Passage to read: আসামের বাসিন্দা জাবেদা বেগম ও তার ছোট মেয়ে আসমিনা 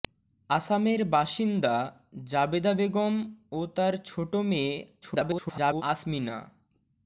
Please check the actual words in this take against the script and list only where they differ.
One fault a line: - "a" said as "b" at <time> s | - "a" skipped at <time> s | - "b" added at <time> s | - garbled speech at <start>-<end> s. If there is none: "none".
- garbled speech at 5.0-5.8 s